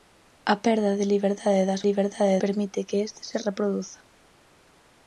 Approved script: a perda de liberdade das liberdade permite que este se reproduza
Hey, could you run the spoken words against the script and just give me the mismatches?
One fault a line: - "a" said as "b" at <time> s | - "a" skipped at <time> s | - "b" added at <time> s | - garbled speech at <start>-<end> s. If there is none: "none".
none